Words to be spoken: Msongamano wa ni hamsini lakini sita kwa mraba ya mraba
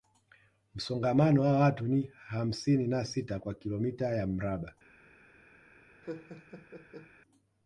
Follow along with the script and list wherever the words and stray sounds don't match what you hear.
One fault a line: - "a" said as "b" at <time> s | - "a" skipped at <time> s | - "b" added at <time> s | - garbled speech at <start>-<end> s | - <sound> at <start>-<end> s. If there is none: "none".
- "watu" added at 1.6 s
- "lakini" said as "na" at 2.9 s
- "mraba" said as "kilomita" at 3.5 s
- laugh at 6.0-7.1 s